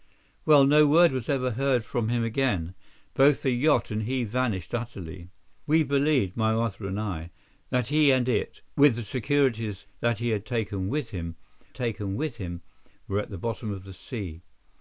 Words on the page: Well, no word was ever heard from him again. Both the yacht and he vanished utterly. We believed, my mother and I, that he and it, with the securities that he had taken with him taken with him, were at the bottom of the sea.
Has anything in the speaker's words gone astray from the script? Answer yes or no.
no